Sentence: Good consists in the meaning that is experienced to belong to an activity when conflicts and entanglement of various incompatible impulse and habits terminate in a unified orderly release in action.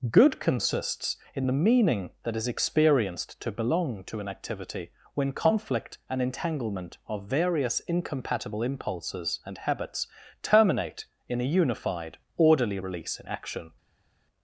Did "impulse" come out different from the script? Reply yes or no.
yes